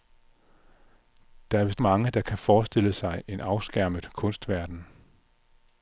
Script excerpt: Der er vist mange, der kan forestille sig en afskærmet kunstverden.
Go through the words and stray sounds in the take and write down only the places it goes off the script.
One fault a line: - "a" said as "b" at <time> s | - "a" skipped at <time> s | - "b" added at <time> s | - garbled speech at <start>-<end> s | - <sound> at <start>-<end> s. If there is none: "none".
none